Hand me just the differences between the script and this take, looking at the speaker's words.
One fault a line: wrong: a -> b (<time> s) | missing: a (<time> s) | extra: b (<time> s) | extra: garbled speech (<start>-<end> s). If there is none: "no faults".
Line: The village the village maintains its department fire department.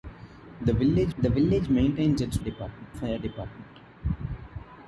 no faults